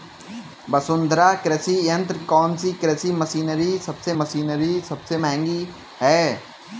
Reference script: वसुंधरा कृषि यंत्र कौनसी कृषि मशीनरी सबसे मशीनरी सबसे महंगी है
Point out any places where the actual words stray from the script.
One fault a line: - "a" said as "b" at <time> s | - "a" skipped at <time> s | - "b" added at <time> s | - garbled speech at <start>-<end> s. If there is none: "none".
none